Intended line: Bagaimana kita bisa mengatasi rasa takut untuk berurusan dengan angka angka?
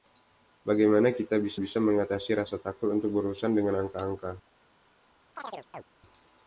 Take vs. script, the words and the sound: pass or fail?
fail